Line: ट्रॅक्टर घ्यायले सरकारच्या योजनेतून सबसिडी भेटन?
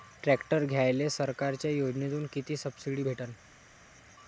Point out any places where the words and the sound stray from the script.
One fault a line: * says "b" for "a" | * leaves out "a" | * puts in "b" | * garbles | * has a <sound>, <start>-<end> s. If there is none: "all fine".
* puts in "किती"